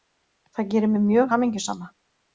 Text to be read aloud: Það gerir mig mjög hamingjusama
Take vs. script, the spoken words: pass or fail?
pass